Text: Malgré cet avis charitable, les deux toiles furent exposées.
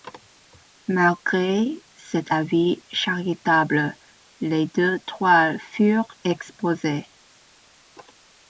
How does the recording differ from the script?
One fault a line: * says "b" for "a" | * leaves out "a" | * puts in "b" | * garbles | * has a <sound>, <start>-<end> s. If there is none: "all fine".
all fine